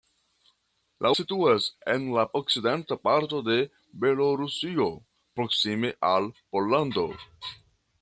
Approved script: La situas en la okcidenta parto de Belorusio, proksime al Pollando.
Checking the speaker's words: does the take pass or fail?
pass